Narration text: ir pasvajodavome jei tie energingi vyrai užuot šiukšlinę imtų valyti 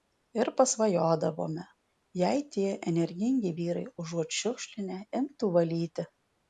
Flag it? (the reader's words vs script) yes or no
no